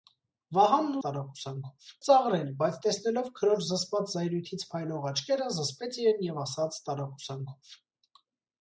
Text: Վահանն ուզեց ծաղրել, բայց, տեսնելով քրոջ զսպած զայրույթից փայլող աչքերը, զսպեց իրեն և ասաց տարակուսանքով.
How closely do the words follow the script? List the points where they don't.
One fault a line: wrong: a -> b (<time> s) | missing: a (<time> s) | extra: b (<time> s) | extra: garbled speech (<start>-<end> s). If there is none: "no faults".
wrong: ուզեց -> տարակուսանքով (1.1 s)